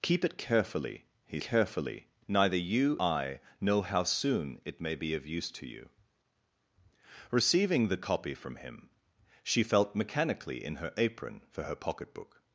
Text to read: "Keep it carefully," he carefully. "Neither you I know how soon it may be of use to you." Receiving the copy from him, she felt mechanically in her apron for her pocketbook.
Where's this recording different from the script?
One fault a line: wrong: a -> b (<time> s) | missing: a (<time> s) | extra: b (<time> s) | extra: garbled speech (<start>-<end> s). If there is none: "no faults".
no faults